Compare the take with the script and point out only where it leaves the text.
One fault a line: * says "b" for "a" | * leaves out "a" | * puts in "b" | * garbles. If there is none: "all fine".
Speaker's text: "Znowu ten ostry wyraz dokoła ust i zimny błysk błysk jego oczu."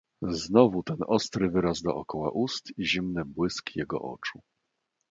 * leaves out "błysk"